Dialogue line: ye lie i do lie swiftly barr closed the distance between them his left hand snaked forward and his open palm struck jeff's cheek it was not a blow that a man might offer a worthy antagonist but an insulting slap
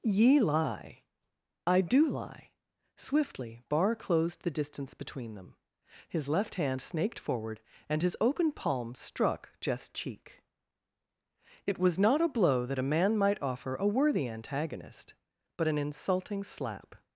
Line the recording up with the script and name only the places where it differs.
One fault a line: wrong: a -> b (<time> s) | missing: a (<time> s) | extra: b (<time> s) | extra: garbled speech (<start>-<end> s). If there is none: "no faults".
no faults